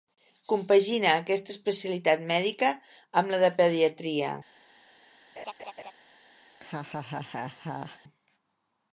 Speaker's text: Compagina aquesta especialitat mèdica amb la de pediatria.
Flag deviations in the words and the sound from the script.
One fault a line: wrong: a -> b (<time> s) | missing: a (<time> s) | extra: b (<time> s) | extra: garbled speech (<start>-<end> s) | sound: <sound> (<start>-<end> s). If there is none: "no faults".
sound: laugh (5.4-5.9 s)
sound: laugh (6.5-8.0 s)